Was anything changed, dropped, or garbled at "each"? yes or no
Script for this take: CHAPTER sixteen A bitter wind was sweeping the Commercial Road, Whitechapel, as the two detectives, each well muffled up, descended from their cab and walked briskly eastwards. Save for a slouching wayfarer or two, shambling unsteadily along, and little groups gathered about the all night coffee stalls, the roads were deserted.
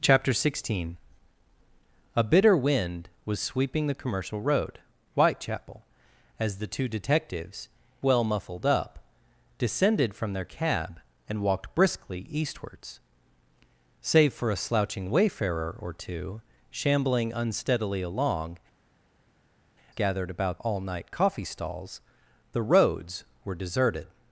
yes